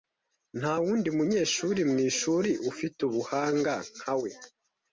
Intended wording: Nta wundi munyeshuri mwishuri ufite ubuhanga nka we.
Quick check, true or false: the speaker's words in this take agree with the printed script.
true